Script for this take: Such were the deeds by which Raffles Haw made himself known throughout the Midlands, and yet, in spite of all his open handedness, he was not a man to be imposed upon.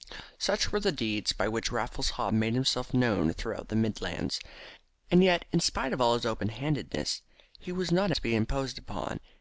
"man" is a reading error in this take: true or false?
true